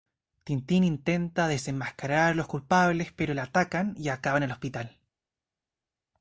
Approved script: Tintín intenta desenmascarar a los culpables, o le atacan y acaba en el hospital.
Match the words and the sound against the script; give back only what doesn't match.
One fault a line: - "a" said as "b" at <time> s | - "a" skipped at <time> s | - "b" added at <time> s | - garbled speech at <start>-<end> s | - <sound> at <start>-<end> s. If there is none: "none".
- "o" said as "pero" at 3.1 s